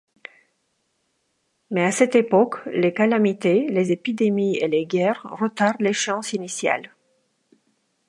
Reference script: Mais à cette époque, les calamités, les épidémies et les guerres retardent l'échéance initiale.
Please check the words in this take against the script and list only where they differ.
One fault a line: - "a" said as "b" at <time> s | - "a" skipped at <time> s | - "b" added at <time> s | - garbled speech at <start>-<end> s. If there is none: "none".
none